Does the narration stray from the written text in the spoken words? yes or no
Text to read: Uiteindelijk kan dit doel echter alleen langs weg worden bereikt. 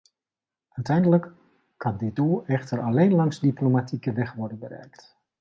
yes